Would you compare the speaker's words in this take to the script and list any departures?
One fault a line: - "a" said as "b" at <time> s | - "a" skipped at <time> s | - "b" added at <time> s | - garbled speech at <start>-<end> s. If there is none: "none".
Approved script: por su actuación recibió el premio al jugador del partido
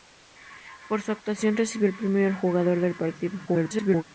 - garbled speech at 3.5-4.0 s